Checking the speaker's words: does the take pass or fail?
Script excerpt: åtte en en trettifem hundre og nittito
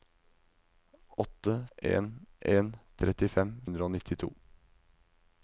pass